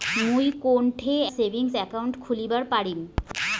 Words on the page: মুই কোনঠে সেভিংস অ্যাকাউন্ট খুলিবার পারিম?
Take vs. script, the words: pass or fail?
pass